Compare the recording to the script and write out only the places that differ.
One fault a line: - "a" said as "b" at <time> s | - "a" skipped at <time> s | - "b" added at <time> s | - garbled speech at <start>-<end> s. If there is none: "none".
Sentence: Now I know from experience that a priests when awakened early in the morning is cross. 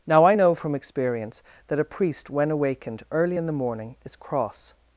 - "priests" said as "priest" at 1.8 s